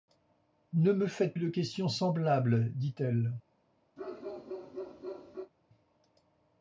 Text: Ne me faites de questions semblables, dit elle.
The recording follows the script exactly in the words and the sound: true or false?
false